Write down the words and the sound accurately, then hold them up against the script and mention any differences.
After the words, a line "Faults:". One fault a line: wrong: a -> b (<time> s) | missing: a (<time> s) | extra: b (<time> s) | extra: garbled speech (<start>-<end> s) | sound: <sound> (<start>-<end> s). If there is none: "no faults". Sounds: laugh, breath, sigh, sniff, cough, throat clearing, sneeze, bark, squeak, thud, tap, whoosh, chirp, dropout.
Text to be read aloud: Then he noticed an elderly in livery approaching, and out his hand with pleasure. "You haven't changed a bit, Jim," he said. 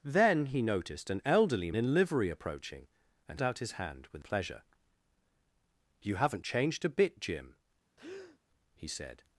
Then he noticed an elderly in livery approaching, and out his hand with pleasure. "You haven't changed a bit, Jim," he said.
Faults:
sound: breath (8.0-8.4 s)